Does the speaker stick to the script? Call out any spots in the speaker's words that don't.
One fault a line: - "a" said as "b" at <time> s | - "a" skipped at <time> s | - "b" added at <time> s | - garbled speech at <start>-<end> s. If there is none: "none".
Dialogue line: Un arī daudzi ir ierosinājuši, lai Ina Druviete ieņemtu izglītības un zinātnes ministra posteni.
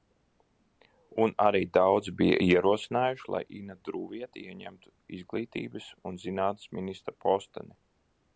- "ir" said as "bija" at 2.2 s